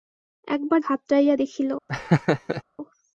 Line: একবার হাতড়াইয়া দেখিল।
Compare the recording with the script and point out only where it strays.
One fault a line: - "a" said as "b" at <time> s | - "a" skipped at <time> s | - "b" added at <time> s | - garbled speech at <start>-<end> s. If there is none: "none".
none